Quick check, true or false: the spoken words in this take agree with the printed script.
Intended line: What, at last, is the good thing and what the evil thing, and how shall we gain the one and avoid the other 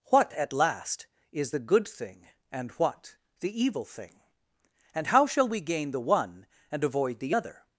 true